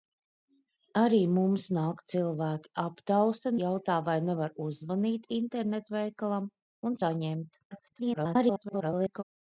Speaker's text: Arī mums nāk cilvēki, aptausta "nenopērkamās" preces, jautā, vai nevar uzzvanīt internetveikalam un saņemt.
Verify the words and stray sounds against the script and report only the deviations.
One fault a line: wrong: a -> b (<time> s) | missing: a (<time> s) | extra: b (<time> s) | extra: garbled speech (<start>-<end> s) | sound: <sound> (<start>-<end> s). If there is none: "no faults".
missing: nenopērkamās preces (3.5 s)
extra: garbled speech (7.7-9.2 s)